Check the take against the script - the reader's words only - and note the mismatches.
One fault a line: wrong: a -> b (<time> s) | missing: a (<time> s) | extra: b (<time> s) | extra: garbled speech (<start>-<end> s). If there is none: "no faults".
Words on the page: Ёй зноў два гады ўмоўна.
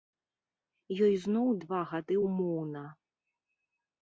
no faults